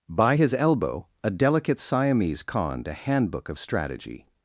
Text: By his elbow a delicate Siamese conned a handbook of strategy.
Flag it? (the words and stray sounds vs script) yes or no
no